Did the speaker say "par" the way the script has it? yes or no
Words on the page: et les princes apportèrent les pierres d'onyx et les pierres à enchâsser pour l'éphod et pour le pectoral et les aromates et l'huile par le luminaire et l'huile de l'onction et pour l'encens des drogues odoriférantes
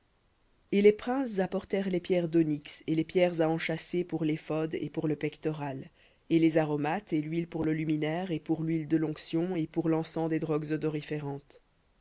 no